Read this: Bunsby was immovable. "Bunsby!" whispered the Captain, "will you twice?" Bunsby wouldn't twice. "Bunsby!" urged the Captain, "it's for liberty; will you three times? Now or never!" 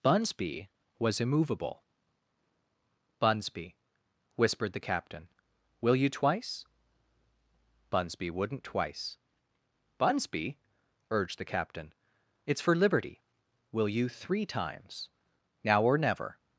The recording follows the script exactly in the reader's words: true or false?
true